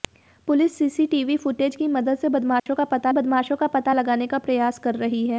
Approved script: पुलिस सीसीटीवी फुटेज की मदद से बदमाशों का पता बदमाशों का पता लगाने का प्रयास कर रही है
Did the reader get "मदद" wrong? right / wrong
right